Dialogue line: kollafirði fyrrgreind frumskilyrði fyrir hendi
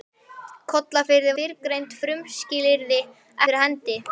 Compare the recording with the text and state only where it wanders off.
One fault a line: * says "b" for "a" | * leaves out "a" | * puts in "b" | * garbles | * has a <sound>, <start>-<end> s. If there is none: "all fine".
all fine